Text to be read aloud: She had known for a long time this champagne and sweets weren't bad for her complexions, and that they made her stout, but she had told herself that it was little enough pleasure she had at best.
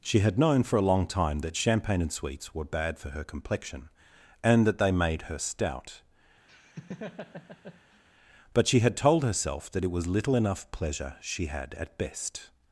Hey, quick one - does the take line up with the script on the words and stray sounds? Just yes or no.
no